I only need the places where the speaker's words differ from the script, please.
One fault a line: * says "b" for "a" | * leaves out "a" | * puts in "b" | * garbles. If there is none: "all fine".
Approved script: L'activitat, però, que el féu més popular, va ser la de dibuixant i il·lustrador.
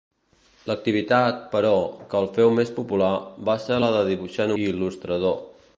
all fine